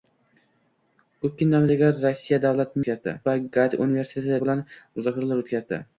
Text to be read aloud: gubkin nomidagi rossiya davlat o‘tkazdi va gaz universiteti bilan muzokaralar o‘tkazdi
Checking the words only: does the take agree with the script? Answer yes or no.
yes